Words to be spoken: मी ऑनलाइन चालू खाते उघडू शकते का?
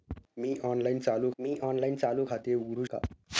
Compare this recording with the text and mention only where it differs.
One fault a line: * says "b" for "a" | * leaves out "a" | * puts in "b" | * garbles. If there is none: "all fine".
* puts in "मी ऑनलाइन चालू"
* leaves out "शकते"